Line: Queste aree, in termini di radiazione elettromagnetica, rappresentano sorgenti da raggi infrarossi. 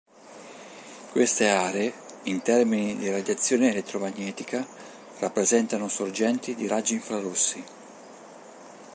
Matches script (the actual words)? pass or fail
fail